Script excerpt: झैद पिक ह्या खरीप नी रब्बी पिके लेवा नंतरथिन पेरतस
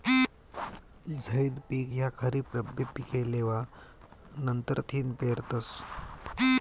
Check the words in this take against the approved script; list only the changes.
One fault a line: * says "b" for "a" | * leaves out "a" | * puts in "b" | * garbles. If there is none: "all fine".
* leaves out "नी"